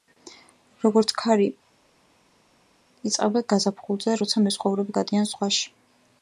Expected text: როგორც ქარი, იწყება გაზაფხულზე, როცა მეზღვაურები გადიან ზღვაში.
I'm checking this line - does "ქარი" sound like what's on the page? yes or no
yes